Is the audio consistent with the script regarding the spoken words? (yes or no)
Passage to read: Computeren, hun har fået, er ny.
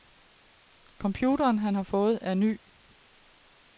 no